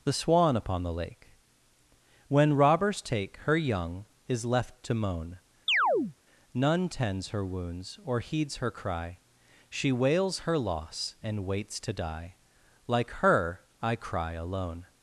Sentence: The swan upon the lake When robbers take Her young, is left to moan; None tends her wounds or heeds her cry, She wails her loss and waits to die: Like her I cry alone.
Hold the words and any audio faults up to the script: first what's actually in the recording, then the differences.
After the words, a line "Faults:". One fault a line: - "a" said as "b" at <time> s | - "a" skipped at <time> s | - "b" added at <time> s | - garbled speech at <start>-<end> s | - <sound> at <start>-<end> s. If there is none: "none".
The swan upon the lake When robbers take Her young, is left to moan; None tends her wounds or heeds her cry, She wails her loss and waits to die: Like her I cry alone.
Faults:
- chirp at 5.7-6.1 s